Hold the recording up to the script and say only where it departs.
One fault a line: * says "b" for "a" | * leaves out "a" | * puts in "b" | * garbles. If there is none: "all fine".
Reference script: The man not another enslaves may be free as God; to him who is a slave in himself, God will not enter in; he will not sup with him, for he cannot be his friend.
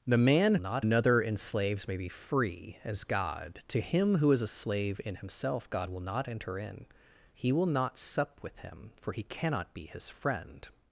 all fine